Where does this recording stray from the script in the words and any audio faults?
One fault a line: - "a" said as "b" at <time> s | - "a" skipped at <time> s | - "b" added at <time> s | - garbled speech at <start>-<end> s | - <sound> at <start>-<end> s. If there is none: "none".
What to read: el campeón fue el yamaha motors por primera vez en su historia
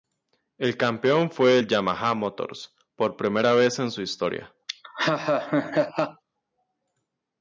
- laugh at 4.7-6.2 s